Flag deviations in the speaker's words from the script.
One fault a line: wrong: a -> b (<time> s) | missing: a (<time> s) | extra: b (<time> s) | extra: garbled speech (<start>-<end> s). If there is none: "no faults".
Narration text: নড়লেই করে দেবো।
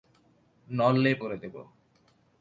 no faults